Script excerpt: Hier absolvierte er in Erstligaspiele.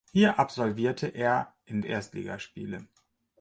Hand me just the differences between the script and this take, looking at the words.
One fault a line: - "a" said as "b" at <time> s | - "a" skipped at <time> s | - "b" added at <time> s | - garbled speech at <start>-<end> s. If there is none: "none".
none